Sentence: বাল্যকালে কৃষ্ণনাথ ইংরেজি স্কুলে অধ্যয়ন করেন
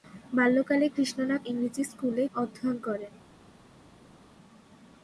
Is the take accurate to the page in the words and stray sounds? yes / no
yes